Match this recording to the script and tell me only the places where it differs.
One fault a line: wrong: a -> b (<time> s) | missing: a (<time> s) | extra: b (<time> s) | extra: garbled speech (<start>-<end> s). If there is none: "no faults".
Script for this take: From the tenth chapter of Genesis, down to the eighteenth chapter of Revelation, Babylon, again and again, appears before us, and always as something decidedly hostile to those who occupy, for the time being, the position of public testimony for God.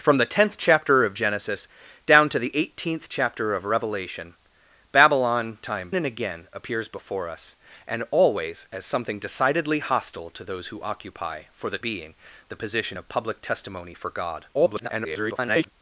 wrong: again -> time (5.6 s)
missing: time (11.8 s)
extra: garbled speech (14.5-15.7 s)